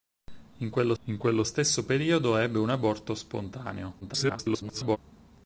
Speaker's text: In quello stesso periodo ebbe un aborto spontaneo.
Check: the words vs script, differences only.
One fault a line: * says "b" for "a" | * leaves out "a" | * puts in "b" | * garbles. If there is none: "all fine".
* puts in "in quello"
* garbles